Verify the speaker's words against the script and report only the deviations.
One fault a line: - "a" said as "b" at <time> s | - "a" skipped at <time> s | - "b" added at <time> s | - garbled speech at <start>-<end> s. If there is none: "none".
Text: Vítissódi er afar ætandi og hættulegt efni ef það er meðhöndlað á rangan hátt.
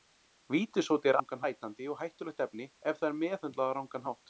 - "afar" said as "rangan" at 1.2 s